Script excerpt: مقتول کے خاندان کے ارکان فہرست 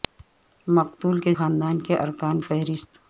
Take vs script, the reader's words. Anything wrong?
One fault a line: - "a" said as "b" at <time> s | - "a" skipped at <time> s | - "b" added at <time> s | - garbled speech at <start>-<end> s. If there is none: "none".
none